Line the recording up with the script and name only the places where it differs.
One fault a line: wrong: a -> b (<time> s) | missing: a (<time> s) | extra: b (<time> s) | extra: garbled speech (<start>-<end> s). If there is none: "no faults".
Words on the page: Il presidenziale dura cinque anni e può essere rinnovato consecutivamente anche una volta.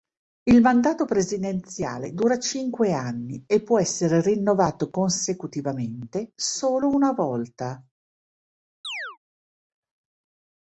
extra: mandato (0.6 s)
wrong: anche -> solo (6.4 s)